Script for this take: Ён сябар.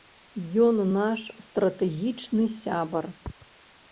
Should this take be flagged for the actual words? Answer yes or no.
yes